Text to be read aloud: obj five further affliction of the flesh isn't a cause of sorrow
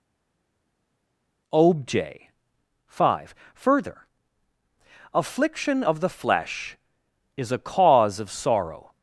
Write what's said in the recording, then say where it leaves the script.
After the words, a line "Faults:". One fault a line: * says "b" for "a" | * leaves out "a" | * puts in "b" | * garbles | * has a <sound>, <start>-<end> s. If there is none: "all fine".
obj five further affliction of the flesh is a cause of sorrow
Faults:
* says "is" for "isn't"